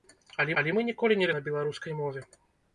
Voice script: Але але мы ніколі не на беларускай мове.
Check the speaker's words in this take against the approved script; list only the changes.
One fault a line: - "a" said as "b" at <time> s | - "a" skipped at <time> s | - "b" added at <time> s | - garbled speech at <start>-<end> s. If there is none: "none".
none